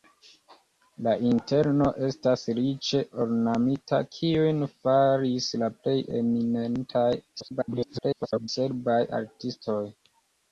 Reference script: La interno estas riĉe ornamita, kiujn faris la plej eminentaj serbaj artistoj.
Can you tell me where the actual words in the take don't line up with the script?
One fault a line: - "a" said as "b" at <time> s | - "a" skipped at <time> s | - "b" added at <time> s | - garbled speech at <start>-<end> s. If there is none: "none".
- garbled speech at 7.4-8.5 s